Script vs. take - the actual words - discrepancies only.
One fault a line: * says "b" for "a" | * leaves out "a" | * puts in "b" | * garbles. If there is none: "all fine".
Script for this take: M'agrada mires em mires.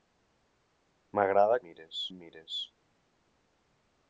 all fine